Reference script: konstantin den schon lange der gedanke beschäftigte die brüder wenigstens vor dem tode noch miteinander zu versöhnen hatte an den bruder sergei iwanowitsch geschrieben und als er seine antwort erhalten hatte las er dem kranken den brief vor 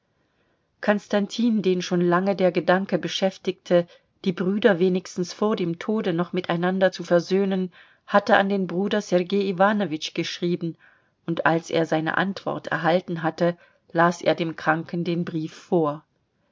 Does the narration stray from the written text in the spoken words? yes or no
no